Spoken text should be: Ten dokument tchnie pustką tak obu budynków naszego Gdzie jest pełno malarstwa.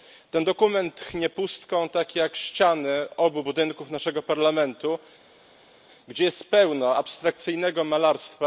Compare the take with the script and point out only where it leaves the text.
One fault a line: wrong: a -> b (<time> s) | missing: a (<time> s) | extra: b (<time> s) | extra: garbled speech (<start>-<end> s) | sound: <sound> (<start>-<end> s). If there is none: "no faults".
extra: jak ściany (2.1 s)
extra: Parlamentu (4.2 s)
extra: abstrakcyjnego (7.0 s)